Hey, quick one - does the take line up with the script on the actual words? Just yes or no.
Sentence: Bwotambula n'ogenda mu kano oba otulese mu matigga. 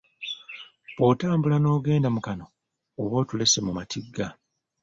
yes